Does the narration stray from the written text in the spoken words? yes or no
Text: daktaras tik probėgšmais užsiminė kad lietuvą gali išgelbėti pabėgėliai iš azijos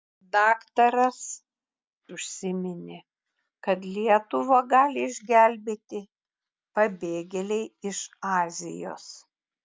yes